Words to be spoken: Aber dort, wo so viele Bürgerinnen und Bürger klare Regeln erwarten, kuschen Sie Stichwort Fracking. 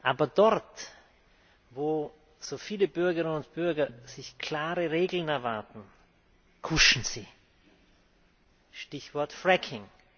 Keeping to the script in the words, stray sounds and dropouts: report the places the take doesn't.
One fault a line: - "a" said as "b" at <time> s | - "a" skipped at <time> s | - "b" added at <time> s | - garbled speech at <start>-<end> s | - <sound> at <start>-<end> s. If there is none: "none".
none